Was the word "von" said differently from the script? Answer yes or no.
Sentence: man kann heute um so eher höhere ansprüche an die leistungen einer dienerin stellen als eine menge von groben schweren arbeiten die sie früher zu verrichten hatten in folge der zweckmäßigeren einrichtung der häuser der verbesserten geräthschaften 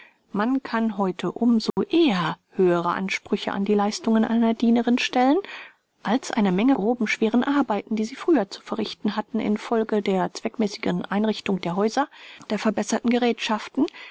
yes